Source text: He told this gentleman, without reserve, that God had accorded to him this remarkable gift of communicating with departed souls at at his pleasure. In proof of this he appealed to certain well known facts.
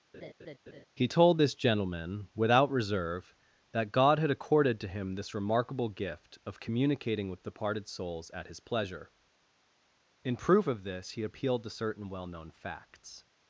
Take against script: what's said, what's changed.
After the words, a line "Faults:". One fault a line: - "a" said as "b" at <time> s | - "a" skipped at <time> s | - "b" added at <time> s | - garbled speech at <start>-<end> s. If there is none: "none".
He told this gentleman, without reserve, that God had accorded to him this remarkable gift of communicating with departed souls at his pleasure. In proof of this he appealed to certain well known facts.
Faults:
- "at" skipped at 8.5 s